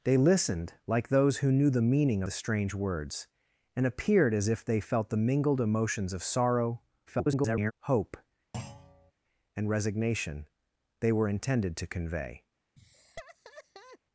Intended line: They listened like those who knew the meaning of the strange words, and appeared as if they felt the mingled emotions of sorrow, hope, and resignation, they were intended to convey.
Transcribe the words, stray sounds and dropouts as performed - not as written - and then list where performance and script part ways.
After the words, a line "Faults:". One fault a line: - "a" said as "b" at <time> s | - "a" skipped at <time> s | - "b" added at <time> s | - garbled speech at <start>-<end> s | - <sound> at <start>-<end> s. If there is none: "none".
They listened like those who knew the meaning the strange words, and appeared as if they felt the mingled emotions of sorrow, [garbled] hope, and resignation, they were intended to convey.
Faults:
- "of" skipped at 2.2 s
- garbled speech at 7.1-7.7 s
- thud at 8.5-9.1 s
- laugh at 12.8-14.0 s